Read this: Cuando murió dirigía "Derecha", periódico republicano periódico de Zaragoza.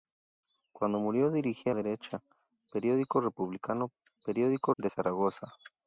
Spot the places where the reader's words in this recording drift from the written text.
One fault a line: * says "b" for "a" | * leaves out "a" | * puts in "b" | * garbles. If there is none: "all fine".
all fine